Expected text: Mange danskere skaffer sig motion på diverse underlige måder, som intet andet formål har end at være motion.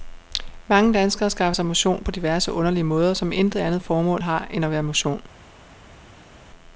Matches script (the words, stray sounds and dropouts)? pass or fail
pass